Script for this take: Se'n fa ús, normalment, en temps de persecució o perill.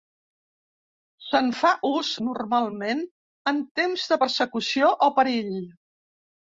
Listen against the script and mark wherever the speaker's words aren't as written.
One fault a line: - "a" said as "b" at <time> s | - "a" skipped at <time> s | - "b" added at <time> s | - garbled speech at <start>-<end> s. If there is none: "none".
none